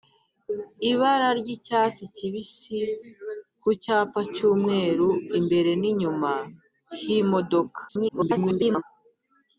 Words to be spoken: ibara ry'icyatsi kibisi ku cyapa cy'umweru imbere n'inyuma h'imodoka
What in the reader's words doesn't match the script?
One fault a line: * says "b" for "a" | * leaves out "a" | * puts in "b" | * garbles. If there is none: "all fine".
* garbles